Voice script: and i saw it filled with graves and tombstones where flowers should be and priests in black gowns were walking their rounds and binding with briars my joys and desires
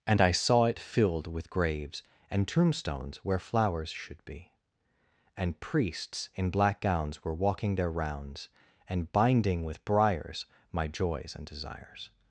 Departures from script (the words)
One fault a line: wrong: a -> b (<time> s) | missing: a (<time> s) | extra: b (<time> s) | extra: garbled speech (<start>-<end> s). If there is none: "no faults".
no faults